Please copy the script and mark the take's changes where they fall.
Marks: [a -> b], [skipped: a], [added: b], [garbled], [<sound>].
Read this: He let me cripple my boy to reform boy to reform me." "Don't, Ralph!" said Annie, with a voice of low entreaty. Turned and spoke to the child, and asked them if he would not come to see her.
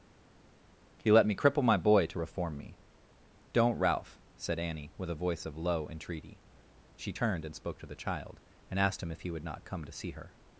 He let me cripple my boy to reform [skipped: boy to reform] me." "Don't, Ralph!" said Annie, with a voice of low entreaty. [added: She] Turned and spoke to the child, and asked [them -> him] if he would not come to see her.